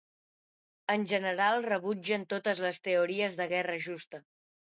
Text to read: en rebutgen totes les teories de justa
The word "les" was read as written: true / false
true